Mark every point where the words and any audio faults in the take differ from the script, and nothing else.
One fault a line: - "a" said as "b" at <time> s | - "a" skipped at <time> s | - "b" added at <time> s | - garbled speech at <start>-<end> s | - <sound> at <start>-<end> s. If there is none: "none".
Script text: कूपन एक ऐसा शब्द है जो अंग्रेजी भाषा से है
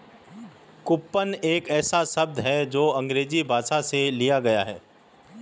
- "लिया गया" added at 4.1 s